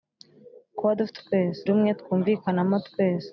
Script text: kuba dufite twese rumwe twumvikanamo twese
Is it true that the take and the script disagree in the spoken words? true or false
false